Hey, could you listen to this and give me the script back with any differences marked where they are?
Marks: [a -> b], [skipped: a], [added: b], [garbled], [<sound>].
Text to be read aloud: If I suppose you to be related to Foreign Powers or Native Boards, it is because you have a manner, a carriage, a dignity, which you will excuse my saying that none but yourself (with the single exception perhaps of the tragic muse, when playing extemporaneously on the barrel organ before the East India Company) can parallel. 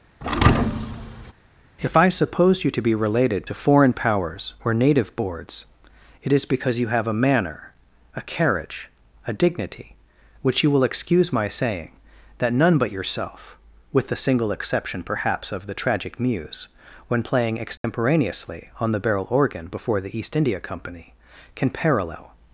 [thud] If I suppose you to be related to Foreign Powers or Native Boards, it is because you have a manner, a carriage, a dignity, which you will excuse my saying that none but yourself (with the single exception perhaps of the tragic muse, when playing extemporaneously [dropout] on the barrel organ before the East India Company) can parallel.